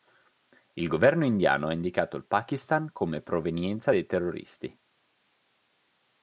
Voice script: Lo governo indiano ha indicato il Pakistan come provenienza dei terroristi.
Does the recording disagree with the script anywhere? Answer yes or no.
yes